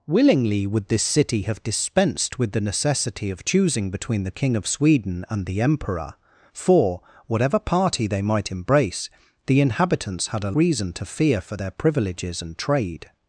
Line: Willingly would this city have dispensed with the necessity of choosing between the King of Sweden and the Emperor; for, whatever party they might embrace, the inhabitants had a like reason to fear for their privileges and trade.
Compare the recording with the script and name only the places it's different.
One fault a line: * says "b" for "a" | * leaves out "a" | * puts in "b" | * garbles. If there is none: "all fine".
* leaves out "like"